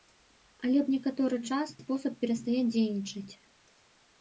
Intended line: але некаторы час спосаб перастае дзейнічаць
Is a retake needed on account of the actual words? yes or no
no